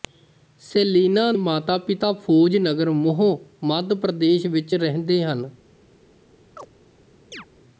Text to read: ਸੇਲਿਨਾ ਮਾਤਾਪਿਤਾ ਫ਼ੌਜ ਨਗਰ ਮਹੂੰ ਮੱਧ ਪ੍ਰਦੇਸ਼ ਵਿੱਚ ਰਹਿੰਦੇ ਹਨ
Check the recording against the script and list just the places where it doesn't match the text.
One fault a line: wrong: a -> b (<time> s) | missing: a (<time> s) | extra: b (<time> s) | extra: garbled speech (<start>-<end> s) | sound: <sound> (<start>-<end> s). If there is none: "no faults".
sound: chirp (6.6-6.7 s)
sound: chirp (7.3-7.5 s)